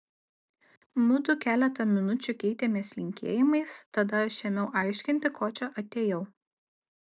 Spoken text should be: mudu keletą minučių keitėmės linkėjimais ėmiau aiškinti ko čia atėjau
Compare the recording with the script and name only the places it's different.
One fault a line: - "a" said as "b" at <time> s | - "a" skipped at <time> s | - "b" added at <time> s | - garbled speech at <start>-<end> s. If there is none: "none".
- "tada aš" added at 4.0 s